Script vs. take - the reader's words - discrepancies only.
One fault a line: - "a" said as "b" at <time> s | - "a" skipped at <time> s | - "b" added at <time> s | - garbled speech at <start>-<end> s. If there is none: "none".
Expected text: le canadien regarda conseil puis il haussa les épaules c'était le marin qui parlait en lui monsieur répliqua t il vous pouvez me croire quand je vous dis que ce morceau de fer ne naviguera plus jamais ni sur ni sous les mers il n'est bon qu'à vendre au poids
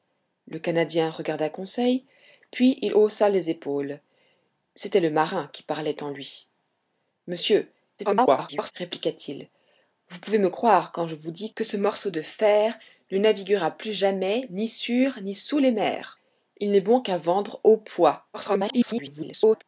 - garbled speech at 8.0-8.7 s
- garbled speech at 18.3-19.6 s